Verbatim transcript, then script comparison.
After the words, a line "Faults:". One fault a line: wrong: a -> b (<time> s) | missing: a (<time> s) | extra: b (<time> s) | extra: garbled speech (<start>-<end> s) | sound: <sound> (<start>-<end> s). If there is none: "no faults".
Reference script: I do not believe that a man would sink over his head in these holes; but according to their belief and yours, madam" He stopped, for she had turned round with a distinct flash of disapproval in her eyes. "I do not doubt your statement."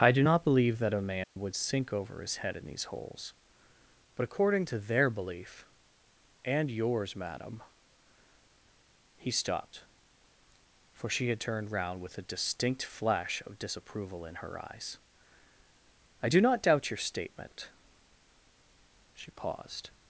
I do not believe that a man would sink over his head in these holes; but according to their belief and yours, madam" He stopped, for she had turned round with a distinct flash of disapproval in her eyes. "I do not doubt your statement." She paused
Faults:
sound: dropout (1.2-1.4 s)
extra: She paused (19.2 s)